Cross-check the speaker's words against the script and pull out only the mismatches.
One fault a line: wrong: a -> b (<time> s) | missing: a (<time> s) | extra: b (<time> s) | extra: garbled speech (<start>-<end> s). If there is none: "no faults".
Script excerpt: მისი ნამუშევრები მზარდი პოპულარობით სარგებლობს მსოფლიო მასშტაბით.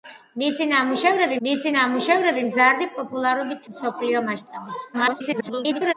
extra: მისი ნამუშევრები (1.5 s)
missing: სარგებლობს (3.7 s)
extra: garbled speech (4.9-5.9 s)